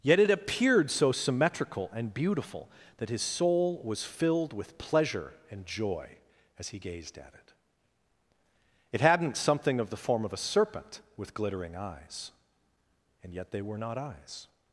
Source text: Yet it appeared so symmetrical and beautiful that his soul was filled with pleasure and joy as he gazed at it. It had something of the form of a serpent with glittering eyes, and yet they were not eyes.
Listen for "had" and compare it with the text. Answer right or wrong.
wrong